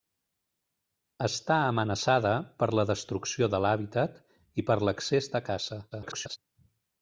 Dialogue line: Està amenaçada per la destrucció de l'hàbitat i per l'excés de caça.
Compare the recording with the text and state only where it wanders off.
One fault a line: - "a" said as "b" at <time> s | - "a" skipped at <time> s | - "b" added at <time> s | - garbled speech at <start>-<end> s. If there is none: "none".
- garbled speech at 5.9-6.4 s